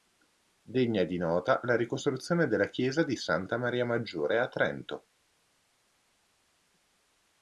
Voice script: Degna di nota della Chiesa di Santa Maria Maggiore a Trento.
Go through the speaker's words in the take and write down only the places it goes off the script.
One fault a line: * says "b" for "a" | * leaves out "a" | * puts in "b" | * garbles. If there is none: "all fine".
* puts in "la ricostruzione"